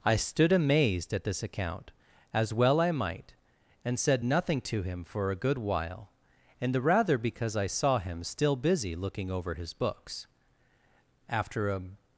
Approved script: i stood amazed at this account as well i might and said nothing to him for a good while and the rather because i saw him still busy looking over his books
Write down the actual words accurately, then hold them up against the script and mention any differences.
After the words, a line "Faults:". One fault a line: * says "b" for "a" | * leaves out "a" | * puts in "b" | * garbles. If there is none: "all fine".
i stood amazed at this account as well i might and said nothing to him for a good while and the rather because i saw him still busy looking over his books after a
Faults:
* puts in "after a"